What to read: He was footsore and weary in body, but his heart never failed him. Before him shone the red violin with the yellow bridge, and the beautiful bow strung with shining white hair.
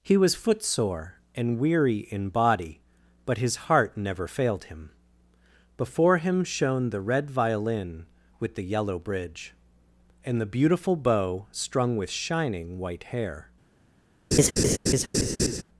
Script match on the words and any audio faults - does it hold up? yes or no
no